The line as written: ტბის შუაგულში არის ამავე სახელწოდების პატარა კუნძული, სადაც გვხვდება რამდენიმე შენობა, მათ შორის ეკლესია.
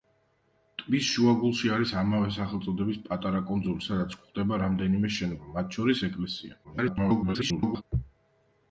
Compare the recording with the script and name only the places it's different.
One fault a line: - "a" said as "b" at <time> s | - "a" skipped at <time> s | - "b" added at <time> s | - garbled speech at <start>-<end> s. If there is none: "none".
- garbled speech at 6.6-7.8 s